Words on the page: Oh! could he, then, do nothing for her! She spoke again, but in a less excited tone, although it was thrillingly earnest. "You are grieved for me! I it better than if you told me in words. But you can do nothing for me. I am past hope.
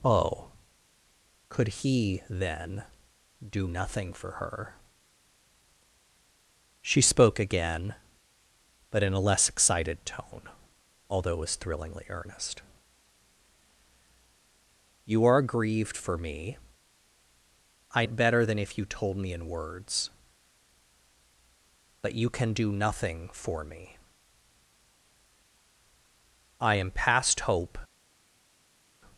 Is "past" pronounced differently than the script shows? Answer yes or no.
no